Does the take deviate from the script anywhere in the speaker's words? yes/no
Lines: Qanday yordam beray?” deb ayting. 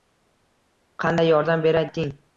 yes